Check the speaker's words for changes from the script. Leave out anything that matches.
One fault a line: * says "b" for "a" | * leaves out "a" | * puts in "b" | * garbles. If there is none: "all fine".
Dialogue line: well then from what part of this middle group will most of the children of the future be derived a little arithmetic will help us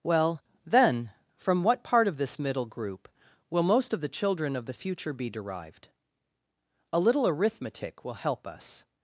all fine